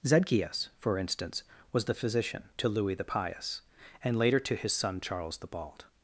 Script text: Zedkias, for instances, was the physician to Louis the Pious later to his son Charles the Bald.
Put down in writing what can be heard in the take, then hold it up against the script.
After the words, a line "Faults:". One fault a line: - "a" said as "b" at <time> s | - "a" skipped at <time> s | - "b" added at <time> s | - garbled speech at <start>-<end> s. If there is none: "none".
Zedkias, for instance, was the physician to Louis the Pious and later to his son Charles the Bald.
Faults:
- "instances" said as "instance" at 1.0 s
- "and" added at 4.0 s